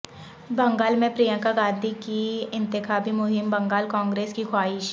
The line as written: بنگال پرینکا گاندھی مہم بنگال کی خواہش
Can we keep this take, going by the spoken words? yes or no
no